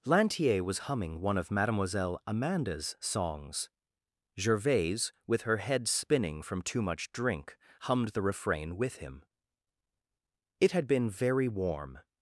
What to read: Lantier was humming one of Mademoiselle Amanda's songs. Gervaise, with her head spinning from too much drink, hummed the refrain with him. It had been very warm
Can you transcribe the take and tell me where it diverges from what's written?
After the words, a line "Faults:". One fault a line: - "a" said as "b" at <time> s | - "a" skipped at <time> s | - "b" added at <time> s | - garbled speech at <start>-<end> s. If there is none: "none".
Lantier was humming one of Mademoiselle Amanda's songs. Gervaise, with her head spinning from too much drink, hummed the refrain with him. It had been very warm
Faults:
none